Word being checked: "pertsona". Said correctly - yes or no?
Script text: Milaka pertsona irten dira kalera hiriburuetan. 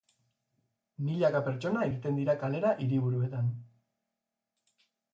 yes